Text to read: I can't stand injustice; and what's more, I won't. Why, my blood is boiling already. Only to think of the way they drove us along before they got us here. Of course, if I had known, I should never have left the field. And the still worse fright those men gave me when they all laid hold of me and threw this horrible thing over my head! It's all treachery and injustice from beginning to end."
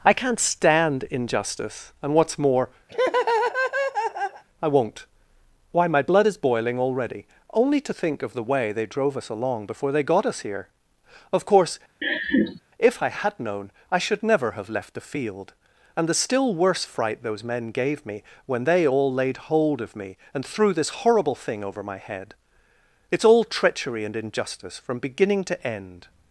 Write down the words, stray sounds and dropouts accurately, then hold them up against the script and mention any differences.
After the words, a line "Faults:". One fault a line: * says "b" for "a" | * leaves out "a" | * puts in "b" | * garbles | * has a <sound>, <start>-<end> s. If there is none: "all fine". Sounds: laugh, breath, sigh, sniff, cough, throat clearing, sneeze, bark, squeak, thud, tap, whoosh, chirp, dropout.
I can't stand injustice; and what's more, I won't. Why, my blood is boiling already. Only to think of the way they drove us along before they got us here. Of course, if I had known, I should never have left the field. And the still worse fright those men gave me when they all laid hold of me and threw this horrible thing over my head! It's all treachery and injustice from beginning to end."
Faults:
* has a laugh, 2.9-4.4 s
* has a laugh, 12.0-12.6 s